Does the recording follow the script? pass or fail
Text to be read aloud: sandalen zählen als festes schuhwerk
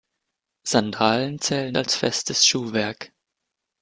pass